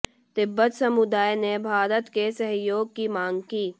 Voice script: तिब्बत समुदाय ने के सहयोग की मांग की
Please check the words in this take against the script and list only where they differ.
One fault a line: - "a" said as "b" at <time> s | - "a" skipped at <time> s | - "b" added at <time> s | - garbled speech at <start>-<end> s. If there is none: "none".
- "भारत" added at 1.6 s